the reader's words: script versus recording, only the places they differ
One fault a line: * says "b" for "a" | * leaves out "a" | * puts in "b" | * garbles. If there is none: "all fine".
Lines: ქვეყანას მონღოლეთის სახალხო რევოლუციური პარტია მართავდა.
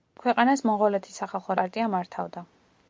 * leaves out "რევოლუციური"